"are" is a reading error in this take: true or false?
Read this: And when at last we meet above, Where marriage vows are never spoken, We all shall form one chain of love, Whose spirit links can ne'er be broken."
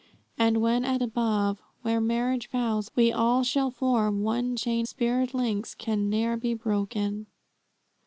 true